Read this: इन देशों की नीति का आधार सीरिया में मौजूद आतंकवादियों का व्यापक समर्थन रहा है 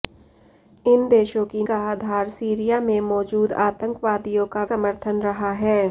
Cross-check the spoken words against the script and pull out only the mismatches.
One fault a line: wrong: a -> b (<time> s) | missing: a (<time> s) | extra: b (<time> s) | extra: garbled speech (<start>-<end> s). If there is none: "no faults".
missing: नीति (1.6 s)
missing: व्यापक (4.6 s)